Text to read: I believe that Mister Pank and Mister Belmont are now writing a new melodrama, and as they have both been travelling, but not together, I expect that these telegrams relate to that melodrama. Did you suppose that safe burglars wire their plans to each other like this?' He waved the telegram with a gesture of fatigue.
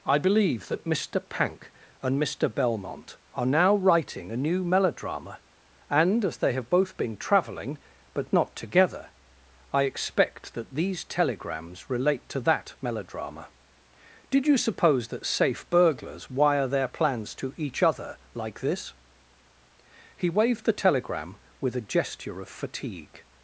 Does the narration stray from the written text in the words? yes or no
no